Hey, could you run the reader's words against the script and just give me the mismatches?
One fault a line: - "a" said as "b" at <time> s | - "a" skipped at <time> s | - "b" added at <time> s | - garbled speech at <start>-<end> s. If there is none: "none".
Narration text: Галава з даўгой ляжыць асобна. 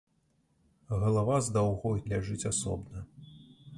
none